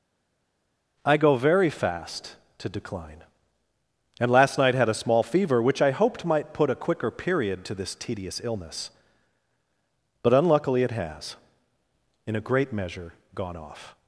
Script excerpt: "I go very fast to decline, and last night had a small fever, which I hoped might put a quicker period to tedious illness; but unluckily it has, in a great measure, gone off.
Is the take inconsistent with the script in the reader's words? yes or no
yes